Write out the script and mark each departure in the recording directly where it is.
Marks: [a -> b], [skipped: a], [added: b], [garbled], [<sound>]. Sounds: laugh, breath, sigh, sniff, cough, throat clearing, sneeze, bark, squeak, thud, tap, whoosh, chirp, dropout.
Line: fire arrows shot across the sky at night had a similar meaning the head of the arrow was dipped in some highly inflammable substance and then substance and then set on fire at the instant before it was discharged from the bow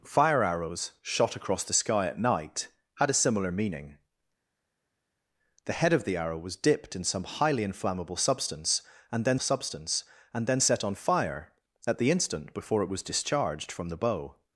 fire arrows shot across the sky at night had a similar meaning the head of the arrow was dipped in some highly inflammable substance and then substance and then set on fire at the instant before it was discharged from the bow